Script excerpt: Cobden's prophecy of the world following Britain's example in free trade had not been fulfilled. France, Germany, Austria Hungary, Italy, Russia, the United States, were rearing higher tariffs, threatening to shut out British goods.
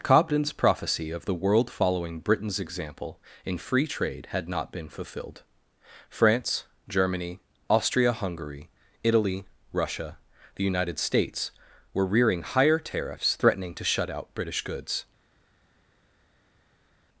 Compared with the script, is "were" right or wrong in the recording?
right